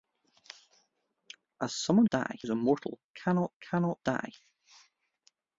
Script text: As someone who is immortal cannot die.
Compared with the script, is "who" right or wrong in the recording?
wrong